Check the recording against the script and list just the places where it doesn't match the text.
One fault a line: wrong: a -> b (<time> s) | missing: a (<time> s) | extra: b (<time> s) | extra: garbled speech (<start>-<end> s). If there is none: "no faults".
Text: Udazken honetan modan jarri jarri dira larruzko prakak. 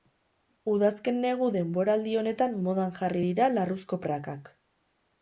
extra: negu denboraldi (1.2 s)
missing: jarri (3.2 s)